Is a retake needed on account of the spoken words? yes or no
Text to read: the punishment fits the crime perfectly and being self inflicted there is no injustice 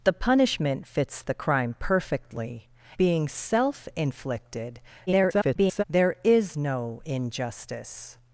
yes